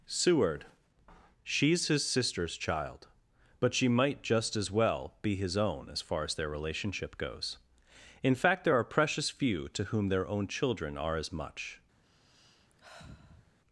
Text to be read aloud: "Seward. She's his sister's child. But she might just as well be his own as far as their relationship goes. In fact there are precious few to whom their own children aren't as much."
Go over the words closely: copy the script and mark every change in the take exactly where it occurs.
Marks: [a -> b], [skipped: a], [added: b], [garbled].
"Seward. She's his sister's child. But she might just as well be his own as far as their relationship goes. In fact there are precious few to whom their own children [aren't -> are] as much."